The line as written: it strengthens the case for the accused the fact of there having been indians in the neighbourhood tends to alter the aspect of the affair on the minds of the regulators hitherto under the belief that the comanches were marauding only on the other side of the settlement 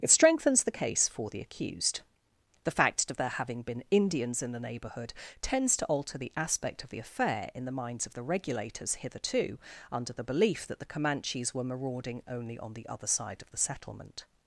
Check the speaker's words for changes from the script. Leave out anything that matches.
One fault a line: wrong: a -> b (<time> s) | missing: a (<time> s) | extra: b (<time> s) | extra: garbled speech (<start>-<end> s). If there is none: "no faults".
wrong: on -> in (7.5 s)